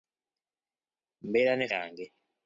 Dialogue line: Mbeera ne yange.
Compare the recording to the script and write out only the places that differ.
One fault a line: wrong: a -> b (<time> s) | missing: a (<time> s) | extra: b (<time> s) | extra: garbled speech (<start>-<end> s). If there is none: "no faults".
no faults